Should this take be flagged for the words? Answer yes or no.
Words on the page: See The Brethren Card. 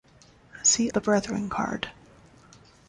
no